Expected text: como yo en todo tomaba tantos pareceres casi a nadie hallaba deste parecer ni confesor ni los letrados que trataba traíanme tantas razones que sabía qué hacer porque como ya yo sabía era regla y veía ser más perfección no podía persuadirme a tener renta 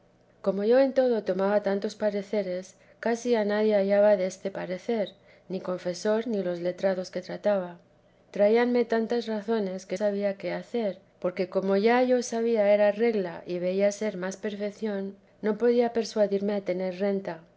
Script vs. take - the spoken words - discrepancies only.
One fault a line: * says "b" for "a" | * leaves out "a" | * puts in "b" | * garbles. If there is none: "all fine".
all fine